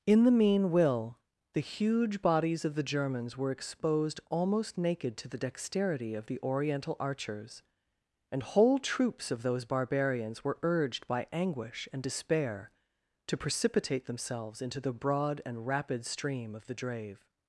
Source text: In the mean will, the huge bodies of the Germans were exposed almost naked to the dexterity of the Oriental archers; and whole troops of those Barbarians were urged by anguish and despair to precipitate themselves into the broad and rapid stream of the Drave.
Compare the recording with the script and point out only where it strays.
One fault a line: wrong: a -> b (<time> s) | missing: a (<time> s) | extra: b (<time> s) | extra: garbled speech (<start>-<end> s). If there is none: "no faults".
no faults